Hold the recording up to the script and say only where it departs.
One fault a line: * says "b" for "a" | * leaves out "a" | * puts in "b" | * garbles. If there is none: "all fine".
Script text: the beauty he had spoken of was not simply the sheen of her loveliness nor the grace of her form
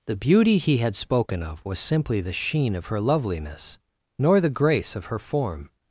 * leaves out "not"